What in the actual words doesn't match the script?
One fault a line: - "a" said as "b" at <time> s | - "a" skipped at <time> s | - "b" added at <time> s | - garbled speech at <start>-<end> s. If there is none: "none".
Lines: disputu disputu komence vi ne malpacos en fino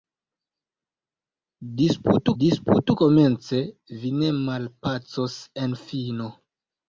none